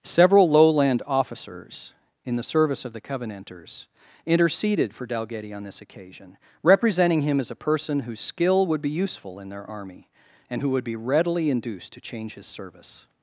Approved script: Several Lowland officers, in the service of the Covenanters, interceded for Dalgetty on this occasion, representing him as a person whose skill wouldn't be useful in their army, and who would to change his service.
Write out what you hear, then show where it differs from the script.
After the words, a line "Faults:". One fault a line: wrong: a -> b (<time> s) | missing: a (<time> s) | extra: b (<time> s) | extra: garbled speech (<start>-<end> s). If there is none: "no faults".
Several Lowland officers, in the service of the Covenanters, interceded for Dalgetty on this occasion, representing him as a person whose skill would be useful in their army, and who would be readily induced to change his service.
Faults:
wrong: wouldn't -> would (8.7 s)
extra: be readily induced (10.8 s)